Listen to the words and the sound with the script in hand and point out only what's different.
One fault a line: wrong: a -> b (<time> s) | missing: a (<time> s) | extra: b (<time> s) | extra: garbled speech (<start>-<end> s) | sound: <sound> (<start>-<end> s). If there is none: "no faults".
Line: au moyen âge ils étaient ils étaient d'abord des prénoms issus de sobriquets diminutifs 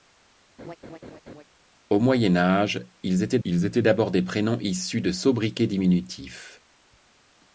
sound: laugh (0.6-1.4 s)